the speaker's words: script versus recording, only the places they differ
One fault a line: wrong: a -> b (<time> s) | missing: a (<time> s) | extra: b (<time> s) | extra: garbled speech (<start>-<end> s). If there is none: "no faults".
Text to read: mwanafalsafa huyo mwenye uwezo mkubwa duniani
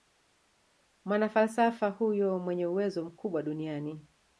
no faults